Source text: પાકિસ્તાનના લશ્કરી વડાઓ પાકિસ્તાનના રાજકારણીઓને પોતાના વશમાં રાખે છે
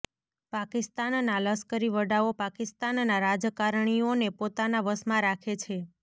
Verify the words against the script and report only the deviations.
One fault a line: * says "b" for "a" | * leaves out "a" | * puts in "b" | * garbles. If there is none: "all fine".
all fine